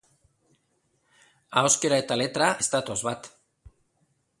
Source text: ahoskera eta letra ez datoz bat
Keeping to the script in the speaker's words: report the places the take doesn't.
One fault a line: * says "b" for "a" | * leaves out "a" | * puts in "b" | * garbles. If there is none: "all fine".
all fine